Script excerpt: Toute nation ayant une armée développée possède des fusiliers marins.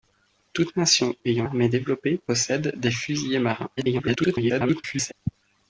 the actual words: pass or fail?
fail